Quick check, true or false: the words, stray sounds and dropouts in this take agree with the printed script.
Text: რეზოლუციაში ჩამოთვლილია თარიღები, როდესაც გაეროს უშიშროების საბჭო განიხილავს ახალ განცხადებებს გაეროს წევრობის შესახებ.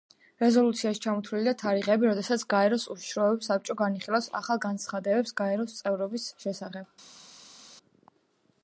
true